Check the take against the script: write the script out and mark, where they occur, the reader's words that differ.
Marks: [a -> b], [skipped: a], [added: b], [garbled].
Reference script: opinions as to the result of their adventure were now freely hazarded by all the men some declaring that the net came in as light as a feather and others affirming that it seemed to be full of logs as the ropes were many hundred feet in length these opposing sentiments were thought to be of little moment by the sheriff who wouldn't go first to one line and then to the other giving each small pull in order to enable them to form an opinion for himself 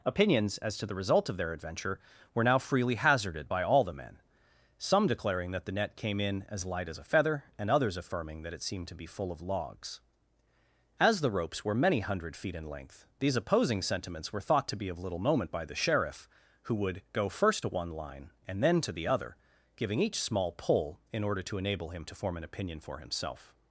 opinions as to the result of their adventure were now freely hazarded by all the men some declaring that the net came in as light as a feather and others affirming that it seemed to be full of logs as the ropes were many hundred feet in length these opposing sentiments were thought to be of little moment by the sheriff who [wouldn't -> would] go first to one line and then to the other giving each small pull in order to enable [them -> him] to form an opinion for himself